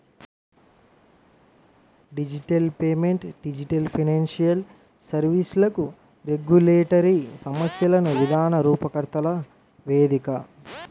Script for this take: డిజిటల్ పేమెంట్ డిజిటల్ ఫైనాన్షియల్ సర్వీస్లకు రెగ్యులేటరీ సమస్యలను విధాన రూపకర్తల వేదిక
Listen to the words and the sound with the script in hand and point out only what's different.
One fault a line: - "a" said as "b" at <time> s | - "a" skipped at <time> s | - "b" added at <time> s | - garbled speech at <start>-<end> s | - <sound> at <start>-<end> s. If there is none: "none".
none